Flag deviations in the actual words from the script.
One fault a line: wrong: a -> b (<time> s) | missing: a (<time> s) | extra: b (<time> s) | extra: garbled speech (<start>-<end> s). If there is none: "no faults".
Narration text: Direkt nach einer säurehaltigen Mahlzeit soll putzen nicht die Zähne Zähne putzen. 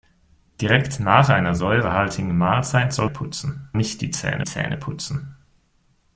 no faults